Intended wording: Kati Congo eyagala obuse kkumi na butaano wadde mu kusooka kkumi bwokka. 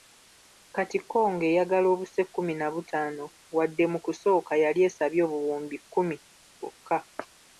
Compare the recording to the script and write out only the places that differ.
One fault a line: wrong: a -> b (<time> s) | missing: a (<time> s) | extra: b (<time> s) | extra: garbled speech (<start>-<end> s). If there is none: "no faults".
extra: yali esabye obuwumbi (4.6 s)